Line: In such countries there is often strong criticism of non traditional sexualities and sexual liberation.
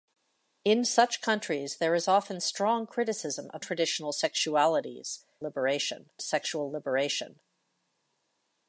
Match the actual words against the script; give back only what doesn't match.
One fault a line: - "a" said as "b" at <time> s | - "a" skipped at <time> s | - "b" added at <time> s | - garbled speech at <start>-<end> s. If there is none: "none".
- "non" skipped at 3.6 s
- "and" said as "liberation" at 5.4 s